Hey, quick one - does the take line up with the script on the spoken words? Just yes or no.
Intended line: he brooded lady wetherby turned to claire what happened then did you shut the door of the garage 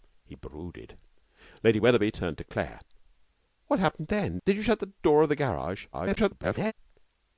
no